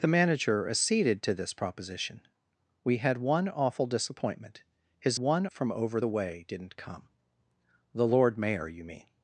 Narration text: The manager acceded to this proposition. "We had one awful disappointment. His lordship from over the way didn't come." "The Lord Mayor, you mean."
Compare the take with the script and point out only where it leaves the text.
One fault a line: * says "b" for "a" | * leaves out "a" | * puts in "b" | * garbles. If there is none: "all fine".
* says "one" for "lordship"